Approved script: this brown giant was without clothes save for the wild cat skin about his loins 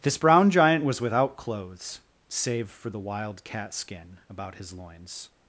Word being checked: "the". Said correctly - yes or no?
yes